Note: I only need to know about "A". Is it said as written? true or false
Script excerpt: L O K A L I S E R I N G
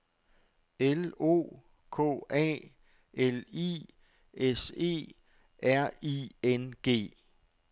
true